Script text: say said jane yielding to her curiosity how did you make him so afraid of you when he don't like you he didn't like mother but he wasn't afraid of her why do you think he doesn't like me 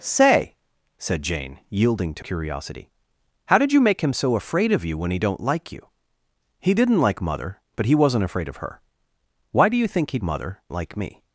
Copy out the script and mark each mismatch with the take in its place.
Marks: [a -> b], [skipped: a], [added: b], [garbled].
say said jane yielding to [skipped: her] curiosity how did you make him so afraid of you when he don't like you he didn't like mother but he wasn't afraid of her why do you think he [doesn't -> mother] like me